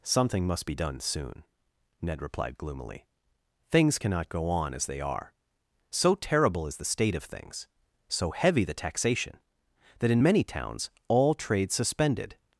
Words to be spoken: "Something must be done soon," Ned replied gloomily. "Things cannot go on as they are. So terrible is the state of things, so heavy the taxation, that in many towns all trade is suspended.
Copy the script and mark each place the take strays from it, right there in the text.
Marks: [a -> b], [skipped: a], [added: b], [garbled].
"Something must be done soon," Ned replied gloomily. "Things cannot go on as they are. So terrible is the state of things, so heavy the taxation, that in many towns all trade [skipped: is] suspended.